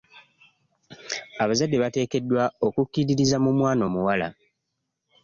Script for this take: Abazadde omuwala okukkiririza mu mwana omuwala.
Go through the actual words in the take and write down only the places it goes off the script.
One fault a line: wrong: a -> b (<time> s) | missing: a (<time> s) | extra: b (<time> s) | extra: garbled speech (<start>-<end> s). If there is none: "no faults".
wrong: omuwala -> bateekeddwa (1.8 s)